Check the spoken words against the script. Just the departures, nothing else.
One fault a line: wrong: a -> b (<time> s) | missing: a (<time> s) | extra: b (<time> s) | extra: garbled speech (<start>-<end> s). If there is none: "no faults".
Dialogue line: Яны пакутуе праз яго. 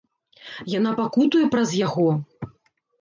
wrong: Яны -> Яна (0.8 s)